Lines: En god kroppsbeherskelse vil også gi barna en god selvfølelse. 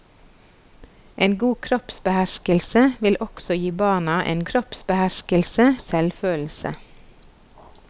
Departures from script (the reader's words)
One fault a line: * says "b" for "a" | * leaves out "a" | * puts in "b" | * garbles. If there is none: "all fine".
* says "kroppsbeherskelse" for "god"